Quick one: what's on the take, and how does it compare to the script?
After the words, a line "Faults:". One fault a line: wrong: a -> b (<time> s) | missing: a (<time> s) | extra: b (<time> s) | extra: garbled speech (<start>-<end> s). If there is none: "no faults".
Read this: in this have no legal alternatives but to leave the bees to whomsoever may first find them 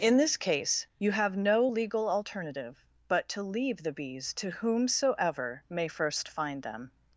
in this case you have no legal alternative but to leave the bees to whomsoever may first find them
Faults:
extra: case you (0.3 s)
wrong: alternatives -> alternative (2.1 s)